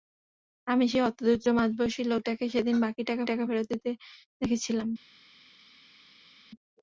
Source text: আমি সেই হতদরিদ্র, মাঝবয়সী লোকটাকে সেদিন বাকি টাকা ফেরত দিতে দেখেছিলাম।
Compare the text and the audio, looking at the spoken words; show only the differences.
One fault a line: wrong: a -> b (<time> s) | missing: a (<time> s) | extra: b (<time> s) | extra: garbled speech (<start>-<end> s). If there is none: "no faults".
extra: টাকা (3.3 s)